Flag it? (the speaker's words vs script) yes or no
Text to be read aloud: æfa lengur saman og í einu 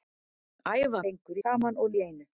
no